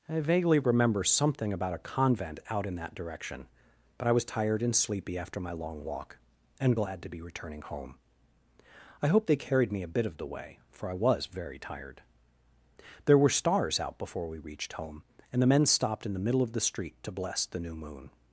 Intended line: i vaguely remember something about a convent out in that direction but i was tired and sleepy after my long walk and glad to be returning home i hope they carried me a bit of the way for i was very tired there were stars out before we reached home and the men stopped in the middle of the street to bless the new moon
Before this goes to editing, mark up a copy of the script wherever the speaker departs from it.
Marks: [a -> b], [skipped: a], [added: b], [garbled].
i vaguely remember something about a convent out in that direction but i was tired and sleepy after my long walk and glad to be returning home i hope they carried me a bit of the way for i was very tired there were stars out before we reached home and the men stopped in the middle of the street to bless the new moon